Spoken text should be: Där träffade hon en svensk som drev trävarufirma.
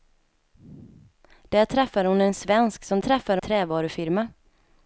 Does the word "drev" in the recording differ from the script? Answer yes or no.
yes